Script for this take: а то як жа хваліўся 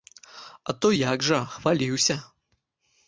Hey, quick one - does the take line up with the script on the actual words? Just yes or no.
yes